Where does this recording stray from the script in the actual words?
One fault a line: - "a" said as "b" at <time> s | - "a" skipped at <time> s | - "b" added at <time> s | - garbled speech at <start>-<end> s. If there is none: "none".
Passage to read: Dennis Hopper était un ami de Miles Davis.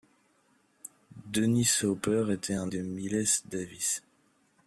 - "ami" skipped at 2.7 s